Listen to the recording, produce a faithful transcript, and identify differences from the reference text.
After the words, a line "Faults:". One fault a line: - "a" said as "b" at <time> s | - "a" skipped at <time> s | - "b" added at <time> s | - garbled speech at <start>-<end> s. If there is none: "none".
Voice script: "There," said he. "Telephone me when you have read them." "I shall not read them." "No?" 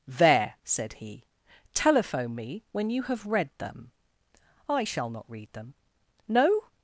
"There," said he. "Telephone me when you have read them." "I shall not read them." "No?"
Faults:
none